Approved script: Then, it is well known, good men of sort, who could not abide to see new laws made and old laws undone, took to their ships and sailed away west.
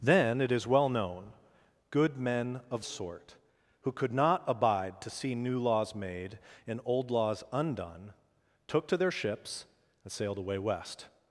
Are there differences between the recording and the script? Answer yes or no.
no